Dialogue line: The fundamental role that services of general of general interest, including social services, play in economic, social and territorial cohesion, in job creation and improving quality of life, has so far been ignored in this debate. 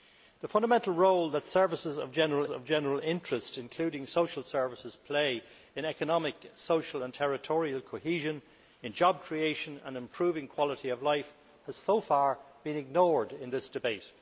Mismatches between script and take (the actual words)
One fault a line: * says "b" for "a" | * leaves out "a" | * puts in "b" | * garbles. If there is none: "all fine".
all fine